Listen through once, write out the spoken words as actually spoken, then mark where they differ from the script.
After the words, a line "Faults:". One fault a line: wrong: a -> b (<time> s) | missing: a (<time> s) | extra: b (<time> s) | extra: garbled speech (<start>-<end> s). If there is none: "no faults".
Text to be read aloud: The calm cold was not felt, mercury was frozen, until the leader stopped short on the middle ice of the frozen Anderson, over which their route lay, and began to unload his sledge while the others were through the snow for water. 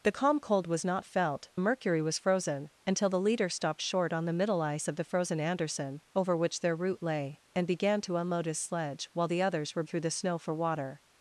The calm cold was not felt, mercury was frozen, until the leader stopped short on the middle ice of the frozen Anderson, over which their route lay, and began to unload his sledge while the others were through the snow for water.
Faults:
no faults